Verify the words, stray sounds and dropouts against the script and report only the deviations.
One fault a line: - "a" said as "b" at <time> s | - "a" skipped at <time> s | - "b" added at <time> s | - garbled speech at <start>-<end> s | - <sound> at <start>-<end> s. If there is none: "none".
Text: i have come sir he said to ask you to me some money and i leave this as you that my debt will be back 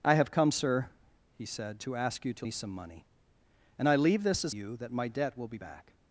none